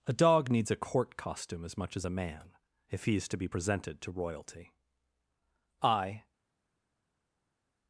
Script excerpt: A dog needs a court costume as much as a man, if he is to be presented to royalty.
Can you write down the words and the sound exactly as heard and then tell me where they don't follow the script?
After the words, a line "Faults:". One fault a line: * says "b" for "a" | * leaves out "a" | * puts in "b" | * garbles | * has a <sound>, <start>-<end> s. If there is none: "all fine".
A dog needs a court costume as much as a man, if he is to be presented to royalty. I
Faults:
* puts in "I"